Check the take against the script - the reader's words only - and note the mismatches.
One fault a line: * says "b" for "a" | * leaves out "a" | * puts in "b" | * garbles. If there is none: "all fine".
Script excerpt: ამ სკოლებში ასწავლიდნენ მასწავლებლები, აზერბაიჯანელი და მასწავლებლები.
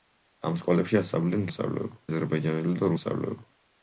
all fine